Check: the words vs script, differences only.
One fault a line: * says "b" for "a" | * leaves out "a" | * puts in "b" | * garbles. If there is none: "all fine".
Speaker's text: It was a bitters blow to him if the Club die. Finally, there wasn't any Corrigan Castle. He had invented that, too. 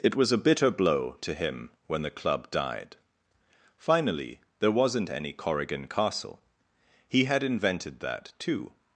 * says "bitter" for "bitters"
* says "when" for "if"
* says "died" for "die"